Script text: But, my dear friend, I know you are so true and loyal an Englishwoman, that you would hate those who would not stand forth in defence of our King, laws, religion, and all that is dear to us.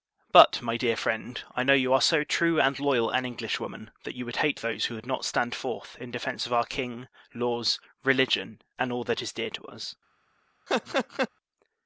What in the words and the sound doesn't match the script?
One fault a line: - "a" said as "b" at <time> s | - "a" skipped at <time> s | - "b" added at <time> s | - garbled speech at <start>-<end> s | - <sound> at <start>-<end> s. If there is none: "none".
- laugh at 10.7-11.3 s